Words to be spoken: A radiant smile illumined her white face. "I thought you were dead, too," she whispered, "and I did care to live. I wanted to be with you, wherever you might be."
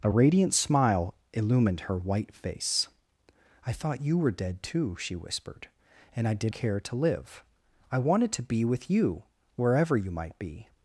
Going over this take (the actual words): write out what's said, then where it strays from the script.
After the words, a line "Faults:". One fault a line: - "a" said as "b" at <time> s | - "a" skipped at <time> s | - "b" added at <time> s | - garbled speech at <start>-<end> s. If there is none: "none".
A radiant smile illumined her white face. "I thought you were dead, too," she whispered, "and I did care to live. I wanted to be with you, wherever you might be."
Faults:
none